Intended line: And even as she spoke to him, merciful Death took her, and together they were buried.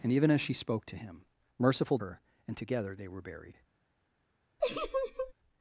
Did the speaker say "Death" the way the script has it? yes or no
no